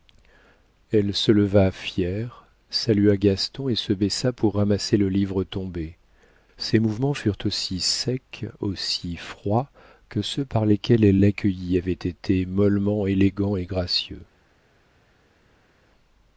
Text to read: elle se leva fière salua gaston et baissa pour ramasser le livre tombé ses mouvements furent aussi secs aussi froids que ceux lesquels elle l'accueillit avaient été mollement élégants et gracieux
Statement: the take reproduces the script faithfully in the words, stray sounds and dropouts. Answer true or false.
false